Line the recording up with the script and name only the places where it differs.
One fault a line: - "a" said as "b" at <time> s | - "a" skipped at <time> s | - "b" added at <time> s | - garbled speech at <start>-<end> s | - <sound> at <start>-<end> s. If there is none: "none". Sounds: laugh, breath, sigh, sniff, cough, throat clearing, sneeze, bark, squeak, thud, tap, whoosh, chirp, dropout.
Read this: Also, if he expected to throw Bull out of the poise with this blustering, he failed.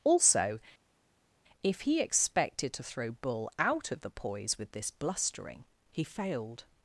none